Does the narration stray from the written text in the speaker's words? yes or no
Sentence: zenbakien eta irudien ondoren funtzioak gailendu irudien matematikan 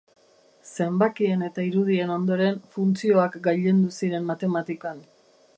yes